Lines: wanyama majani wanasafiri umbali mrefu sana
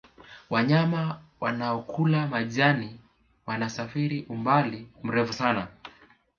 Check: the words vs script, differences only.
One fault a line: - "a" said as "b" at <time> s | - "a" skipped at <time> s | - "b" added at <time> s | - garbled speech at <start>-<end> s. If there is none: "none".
- "wanaokula" added at 1.4 s